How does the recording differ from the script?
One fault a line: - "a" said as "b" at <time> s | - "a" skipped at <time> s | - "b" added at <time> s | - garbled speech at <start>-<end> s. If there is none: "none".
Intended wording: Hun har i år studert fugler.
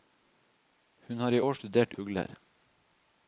none